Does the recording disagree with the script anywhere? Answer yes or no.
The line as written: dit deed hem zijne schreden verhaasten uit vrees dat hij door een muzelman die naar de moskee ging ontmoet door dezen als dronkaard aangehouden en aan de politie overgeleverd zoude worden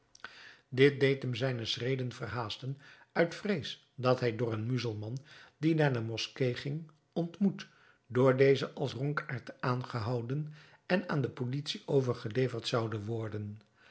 no